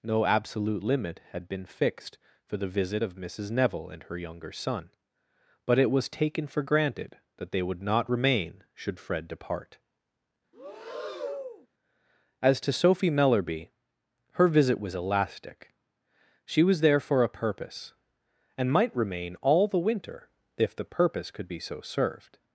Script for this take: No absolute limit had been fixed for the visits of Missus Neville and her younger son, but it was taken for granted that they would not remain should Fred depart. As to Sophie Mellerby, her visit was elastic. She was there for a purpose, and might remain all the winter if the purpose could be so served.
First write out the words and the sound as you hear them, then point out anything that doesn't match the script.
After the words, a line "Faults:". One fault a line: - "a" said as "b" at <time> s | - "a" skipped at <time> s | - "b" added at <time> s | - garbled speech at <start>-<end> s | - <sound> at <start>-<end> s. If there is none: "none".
No absolute limit had been fixed for the visit of Missus Neville and her younger son, but it was taken for granted that they would not remain should Fred depart. As to Sophie Mellerby, her visit was elastic. She was there for a purpose, and might remain all the winter if the purpose could be so served.
Faults:
- "visits" said as "visit" at 2.7 s
- breath at 10.5-11.7 s